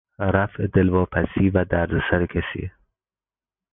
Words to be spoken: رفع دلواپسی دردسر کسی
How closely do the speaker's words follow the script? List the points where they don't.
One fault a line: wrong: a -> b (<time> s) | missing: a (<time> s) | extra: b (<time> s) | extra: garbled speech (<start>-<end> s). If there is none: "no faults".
extra: و (1.5 s)